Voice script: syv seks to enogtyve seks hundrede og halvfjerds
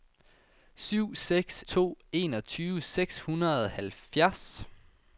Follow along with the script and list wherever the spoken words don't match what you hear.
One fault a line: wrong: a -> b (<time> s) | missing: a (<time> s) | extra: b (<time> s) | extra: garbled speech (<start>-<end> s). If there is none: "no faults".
no faults